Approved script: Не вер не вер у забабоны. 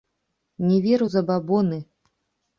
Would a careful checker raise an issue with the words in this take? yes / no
yes